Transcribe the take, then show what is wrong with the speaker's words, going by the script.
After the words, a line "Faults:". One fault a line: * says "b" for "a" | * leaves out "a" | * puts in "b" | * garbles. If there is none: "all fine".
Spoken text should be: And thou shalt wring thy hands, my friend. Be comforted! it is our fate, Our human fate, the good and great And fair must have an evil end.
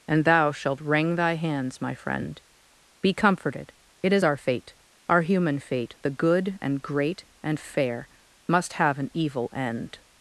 And thou shalt wring thy hands, my friend. Be comforted! it is our fate, Our human fate, the good and great And fair must have an evil end.
Faults:
all fine